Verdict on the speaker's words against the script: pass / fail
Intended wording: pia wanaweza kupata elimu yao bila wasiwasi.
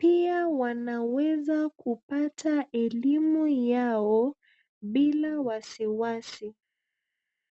pass